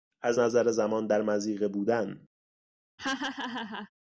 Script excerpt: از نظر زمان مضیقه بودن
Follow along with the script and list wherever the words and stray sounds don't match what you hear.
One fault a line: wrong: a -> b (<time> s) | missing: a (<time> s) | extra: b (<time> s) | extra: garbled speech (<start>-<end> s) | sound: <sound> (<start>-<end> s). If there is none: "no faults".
extra: در (1.1 s)
sound: laugh (3.0-3.9 s)